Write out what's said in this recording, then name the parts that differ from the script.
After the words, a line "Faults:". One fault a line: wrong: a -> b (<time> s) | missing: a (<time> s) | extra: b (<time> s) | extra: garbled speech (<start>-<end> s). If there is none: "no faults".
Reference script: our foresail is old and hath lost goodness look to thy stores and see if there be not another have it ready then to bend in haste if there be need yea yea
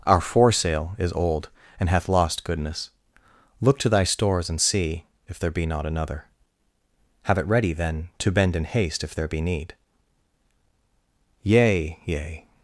our foresail is old and hath lost goodness look to thy stores and see if there be not another have it ready then to bend in haste if there be need yea yea
Faults:
no faults